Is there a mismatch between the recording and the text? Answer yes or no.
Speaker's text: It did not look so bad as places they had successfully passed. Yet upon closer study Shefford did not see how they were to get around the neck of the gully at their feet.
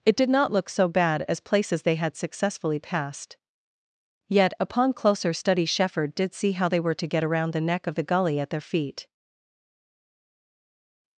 yes